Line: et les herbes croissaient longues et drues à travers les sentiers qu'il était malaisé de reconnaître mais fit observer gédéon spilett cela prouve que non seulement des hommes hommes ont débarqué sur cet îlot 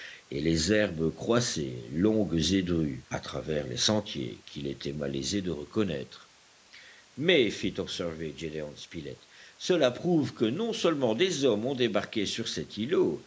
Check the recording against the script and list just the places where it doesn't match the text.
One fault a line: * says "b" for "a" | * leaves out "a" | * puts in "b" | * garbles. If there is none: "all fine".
* leaves out "hommes"